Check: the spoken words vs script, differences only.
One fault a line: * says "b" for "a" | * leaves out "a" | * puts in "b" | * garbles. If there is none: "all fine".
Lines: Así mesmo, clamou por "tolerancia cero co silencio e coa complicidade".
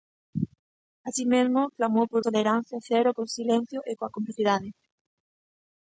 all fine